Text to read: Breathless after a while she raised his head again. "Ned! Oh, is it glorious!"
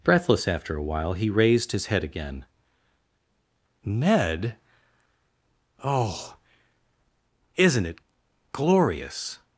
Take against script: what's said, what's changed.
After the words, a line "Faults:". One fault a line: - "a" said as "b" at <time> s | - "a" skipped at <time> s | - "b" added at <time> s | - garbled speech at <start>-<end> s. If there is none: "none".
Breathless after a while he raised his head again. "Ned! Oh, isn't it glorious!"
Faults:
- "she" said as "he" at 1.1 s
- "is" said as "isn't" at 7.5 s